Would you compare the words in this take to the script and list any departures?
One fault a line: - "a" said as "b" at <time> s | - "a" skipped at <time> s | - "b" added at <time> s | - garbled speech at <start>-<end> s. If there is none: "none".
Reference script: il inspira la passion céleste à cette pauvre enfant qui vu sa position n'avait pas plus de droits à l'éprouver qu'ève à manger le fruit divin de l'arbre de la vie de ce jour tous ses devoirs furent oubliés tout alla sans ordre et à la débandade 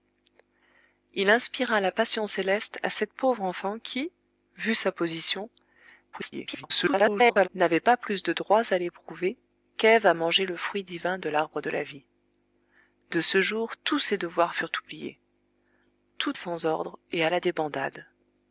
- garbled speech at 6.1-7.5 s
- "alla" skipped at 16.3 s